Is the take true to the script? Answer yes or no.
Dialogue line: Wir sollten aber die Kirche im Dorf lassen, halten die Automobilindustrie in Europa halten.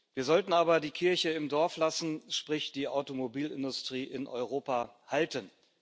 no